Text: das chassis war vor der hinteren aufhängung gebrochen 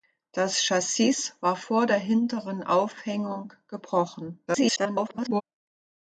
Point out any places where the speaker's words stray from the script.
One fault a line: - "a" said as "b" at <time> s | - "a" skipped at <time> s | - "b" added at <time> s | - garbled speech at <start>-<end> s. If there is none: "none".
- garbled speech at 4.5-5.4 s